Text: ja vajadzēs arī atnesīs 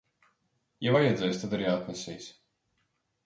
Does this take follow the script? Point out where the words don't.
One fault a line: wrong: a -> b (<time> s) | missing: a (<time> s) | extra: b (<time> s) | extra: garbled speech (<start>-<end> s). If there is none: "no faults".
extra: tad (1.4 s)